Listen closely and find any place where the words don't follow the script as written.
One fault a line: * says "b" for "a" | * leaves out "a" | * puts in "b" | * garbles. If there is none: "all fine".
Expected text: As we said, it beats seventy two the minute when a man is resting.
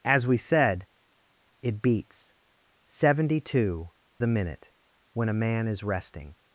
all fine